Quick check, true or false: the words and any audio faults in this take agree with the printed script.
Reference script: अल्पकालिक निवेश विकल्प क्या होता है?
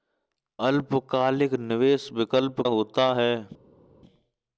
false